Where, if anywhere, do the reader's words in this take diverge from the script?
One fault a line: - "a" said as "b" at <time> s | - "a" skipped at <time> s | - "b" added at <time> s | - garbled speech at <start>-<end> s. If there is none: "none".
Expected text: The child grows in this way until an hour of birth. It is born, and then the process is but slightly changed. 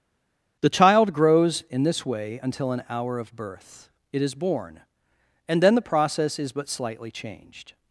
none